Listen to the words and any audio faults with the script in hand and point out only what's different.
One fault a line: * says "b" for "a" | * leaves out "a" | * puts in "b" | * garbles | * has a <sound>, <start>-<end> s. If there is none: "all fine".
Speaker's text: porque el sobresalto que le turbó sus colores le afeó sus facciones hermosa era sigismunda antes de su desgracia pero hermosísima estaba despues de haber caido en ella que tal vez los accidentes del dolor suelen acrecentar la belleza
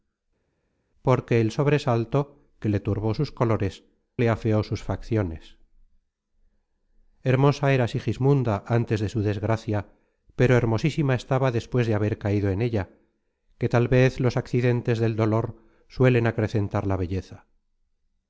all fine